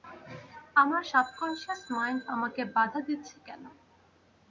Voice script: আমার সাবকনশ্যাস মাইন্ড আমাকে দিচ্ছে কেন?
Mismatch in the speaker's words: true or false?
true